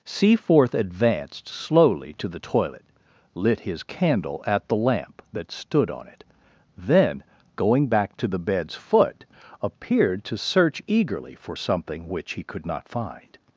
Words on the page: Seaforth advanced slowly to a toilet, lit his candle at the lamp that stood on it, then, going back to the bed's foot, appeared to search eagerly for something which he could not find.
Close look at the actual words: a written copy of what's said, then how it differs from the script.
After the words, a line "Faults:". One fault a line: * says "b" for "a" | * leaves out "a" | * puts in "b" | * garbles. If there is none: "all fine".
Seaforth advanced slowly to the toilet, lit his candle at the lamp that stood on it, then, going back to the bed's foot, appeared to search eagerly for something which he could not find.
Faults:
* says "the" for "a"